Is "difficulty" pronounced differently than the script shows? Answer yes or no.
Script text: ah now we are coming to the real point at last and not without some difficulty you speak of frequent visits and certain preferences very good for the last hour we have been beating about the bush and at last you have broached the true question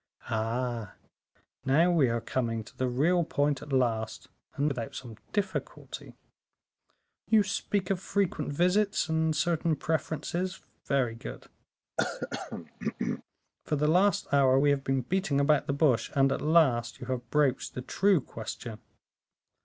no